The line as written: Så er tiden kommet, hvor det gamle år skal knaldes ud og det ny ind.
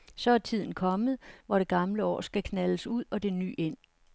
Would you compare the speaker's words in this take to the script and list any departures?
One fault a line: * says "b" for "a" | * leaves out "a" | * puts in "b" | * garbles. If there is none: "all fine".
all fine